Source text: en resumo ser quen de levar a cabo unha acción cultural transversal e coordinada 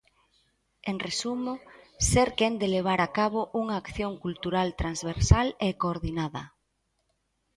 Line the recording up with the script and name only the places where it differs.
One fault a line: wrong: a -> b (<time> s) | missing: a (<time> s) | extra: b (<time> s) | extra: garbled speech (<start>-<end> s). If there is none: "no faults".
no faults